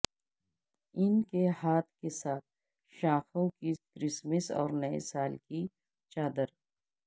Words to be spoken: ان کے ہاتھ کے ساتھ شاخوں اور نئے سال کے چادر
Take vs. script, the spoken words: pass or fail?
fail